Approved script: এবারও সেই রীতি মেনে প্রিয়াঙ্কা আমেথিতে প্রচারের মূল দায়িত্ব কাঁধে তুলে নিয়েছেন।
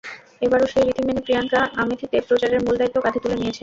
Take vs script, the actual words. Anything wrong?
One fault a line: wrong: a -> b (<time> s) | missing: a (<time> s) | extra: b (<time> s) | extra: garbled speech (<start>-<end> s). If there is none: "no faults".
no faults